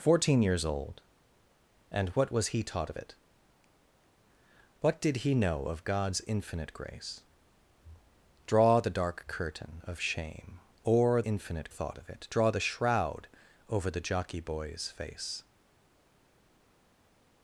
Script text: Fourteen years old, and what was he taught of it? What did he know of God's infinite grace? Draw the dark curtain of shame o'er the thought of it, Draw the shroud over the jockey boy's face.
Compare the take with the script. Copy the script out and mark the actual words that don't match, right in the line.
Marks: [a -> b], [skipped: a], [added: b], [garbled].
Fourteen years old, and what was he taught of it? What did he know of God's infinite grace? Draw the dark curtain of shame o'er [the -> infinite] thought of it, Draw the shroud over the jockey boy's face.